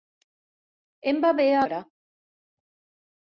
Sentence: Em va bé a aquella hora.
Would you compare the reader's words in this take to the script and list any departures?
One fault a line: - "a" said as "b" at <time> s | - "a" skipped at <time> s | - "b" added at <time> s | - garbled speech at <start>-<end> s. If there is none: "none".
- "aquella" skipped at 1.6 s